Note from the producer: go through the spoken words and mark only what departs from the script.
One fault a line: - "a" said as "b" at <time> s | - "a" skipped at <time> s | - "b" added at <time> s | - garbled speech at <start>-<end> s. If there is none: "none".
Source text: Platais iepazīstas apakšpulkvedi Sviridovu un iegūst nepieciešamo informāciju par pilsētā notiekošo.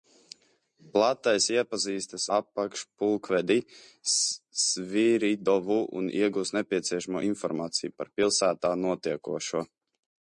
none